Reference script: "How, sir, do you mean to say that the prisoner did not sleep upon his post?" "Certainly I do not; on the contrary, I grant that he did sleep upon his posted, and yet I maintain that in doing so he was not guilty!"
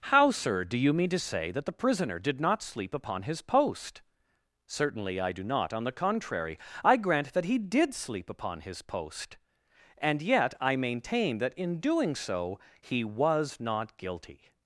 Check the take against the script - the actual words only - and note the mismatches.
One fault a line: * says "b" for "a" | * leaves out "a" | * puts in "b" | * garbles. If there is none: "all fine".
* says "post" for "posted"